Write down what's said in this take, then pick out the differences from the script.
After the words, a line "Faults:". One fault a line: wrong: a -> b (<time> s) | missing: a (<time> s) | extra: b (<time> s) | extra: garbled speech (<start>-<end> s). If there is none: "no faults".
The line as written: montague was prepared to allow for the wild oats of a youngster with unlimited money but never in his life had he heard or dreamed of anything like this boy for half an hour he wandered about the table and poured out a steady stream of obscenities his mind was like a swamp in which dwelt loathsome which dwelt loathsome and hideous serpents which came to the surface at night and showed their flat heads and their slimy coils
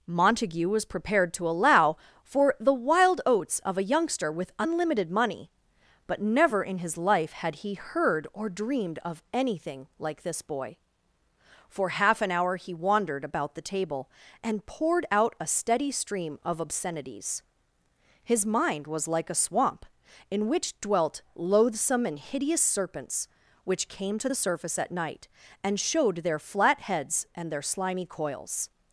montague was prepared to allow for the wild oats of a youngster with unlimited money but never in his life had he heard or dreamed of anything like this boy for half an hour he wandered about the table and poured out a steady stream of obscenities his mind was like a swamp in which dwelt loathsome and hideous serpents which came to the surface at night and showed their flat heads and their slimy coils
Faults:
missing: which dwelt loathsome (22.1 s)